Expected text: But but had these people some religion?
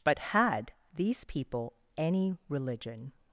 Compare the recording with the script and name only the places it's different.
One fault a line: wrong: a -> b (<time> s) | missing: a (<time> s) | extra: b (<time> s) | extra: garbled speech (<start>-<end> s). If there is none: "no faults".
missing: but (0.2 s)
wrong: some -> any (2.0 s)